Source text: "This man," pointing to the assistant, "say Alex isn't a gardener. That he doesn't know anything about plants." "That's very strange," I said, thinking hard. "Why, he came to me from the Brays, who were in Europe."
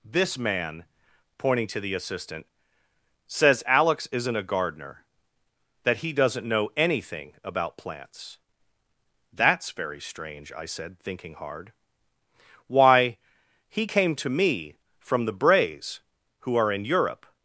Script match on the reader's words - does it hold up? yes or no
no